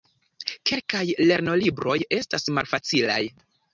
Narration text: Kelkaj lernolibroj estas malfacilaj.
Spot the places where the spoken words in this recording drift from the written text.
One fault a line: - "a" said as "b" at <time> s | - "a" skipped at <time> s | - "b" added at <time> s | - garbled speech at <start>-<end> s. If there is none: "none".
none